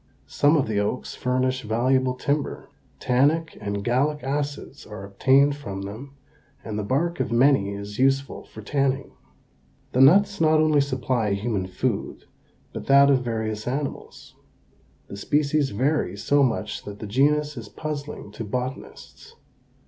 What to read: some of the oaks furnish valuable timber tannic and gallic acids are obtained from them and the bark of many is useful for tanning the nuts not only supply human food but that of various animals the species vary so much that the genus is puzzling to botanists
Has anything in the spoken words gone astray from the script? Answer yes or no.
no